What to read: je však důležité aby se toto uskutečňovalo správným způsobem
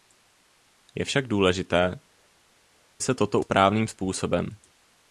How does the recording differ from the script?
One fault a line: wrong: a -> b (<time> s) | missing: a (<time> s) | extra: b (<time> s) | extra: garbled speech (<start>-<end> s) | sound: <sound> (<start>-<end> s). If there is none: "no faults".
missing: aby (2.0 s)
missing: uskutečňovalo (3.4 s)